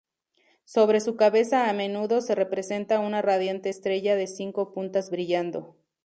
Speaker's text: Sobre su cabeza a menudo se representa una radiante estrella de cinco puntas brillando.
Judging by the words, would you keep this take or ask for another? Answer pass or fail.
pass